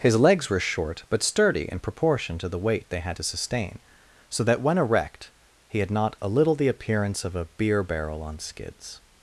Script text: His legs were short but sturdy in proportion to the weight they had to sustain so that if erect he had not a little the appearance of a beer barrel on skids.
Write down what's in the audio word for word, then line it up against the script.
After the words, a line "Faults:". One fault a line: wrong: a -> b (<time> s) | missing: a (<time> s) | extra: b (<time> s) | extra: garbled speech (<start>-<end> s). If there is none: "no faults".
His legs were short but sturdy in proportion to the weight they had to sustain so that when erect he had not a little the appearance of a beer barrel on skids.
Faults:
wrong: if -> when (4.6 s)